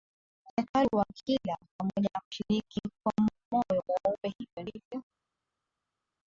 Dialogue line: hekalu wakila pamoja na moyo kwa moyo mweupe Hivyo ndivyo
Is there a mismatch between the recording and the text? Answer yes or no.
yes